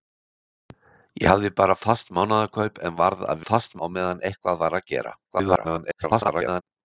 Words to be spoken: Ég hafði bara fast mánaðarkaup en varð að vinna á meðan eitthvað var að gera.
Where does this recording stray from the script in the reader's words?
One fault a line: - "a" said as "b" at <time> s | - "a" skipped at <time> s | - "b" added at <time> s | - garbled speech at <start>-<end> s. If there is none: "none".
- "vinna" said as "fast" at 3.4 s
- garbled speech at 5.3-6.6 s